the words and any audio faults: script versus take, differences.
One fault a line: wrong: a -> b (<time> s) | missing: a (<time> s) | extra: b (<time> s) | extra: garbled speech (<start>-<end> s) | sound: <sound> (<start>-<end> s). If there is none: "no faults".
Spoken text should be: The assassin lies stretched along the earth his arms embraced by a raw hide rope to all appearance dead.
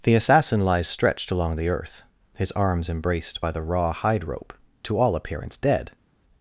wrong: a -> the (3.5 s)